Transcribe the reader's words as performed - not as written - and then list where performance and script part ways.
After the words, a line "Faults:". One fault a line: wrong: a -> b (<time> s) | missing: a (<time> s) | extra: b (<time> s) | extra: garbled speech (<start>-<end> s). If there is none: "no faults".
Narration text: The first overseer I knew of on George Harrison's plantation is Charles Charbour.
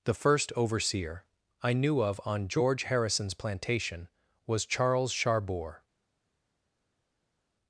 The first overseer I knew of on George Harrison's plantation was Charles Charbour.
Faults:
wrong: is -> was (4.5 s)